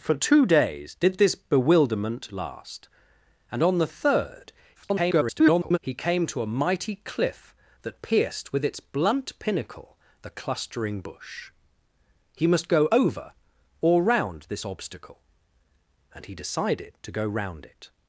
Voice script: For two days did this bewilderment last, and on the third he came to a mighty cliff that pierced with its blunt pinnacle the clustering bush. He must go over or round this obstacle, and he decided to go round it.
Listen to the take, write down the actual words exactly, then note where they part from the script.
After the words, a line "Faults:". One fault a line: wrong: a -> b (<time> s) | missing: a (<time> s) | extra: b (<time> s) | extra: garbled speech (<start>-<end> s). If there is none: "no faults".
For two days did this bewilderment last, and on the third [garbled] he came to a mighty cliff that pierced with its blunt pinnacle the clustering bush. He must go over or round this obstacle, and he decided to go round it.
Faults:
extra: garbled speech (4.7-5.8 s)